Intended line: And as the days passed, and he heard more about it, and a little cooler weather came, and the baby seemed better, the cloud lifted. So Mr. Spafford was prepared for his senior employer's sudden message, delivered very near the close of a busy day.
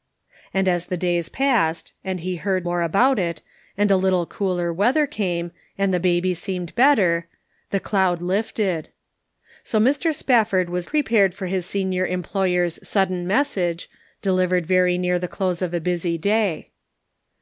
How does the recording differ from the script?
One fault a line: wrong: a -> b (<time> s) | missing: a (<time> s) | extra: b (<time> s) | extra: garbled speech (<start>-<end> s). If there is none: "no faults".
no faults